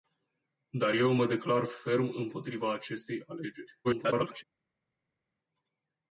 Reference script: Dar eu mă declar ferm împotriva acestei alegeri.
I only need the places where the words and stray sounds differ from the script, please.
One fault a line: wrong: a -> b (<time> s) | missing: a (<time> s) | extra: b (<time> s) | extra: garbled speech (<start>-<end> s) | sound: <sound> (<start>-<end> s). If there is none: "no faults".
extra: garbled speech (3.8-4.4 s)